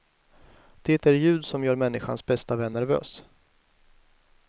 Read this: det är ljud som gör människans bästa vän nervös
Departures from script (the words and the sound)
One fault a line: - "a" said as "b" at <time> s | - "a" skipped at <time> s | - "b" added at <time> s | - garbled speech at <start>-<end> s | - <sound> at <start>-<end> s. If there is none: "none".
none